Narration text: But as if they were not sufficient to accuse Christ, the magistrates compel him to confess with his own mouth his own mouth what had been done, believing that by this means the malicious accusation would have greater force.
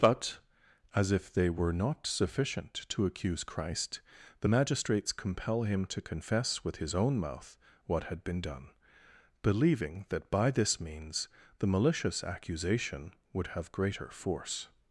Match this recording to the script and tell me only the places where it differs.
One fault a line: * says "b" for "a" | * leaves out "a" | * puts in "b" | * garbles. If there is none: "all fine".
* leaves out "his own mouth"